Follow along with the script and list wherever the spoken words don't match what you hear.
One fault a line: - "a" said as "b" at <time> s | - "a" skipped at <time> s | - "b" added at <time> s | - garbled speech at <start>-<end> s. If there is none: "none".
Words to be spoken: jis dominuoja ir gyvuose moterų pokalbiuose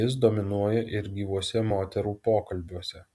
none